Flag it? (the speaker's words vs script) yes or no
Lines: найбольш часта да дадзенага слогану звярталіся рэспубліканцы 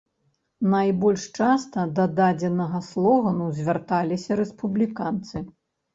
no